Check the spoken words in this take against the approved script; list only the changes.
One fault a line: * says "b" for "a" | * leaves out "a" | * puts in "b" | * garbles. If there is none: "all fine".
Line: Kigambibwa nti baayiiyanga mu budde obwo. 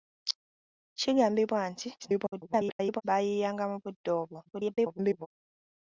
* garbles
* garbles